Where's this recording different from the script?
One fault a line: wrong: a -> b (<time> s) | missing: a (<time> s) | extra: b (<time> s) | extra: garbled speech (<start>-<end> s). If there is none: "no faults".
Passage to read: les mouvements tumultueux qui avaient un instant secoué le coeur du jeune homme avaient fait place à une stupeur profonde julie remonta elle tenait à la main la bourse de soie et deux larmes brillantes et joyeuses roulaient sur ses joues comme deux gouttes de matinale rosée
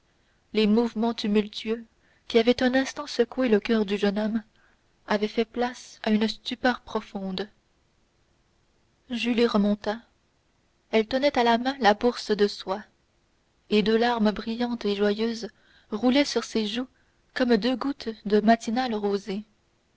no faults